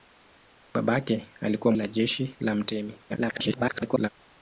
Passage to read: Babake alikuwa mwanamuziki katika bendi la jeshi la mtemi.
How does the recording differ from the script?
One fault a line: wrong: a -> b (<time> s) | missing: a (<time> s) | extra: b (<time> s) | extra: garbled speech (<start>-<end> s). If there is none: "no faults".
missing: mwanamuziki katika bendi (1.7 s)
extra: garbled speech (3.1-4.1 s)